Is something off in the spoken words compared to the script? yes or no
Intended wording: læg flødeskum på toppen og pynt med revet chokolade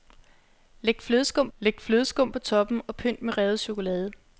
yes